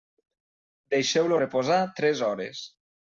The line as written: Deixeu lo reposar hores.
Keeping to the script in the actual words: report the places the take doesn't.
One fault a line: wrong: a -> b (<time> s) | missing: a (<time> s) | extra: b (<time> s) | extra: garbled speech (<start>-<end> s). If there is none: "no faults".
extra: tres (2.0 s)